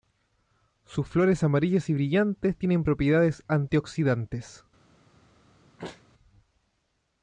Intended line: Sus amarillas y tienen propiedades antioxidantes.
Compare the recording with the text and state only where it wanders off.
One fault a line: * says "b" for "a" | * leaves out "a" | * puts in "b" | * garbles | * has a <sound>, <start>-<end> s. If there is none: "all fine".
* puts in "flores"
* puts in "brillantes"
* has a sneeze, 5.8-6.0 s